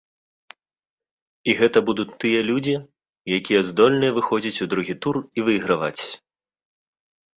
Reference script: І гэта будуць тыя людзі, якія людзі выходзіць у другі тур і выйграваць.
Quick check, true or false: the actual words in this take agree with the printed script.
false